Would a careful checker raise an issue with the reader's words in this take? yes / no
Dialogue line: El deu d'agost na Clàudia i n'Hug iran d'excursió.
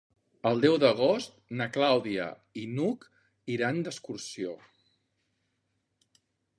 no